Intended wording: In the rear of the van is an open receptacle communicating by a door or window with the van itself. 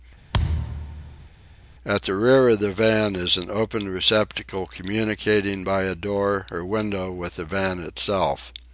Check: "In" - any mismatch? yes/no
yes